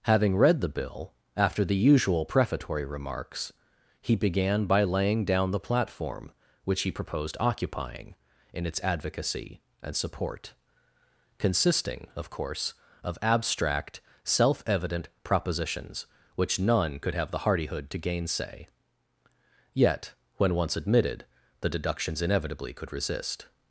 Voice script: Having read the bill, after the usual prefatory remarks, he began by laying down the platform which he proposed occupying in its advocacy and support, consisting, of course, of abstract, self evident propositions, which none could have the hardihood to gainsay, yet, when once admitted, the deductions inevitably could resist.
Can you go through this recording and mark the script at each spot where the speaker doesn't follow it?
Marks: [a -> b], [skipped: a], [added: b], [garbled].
Having read the bill, after the usual prefatory remarks, he began by laying down the platform which he proposed occupying in its advocacy and support, consisting, of course, of abstract, self evident propositions, which none could have the hardihood to gainsay, yet, when once admitted, the deductions inevitably could resist.